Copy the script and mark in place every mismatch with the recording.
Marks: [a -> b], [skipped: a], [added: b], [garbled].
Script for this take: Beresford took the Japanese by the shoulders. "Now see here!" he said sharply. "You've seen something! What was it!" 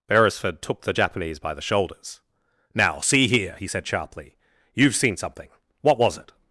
Beresford took the Japanese by the shoulders. "Now see here!" he said sharply. "You've seen something! What was it!"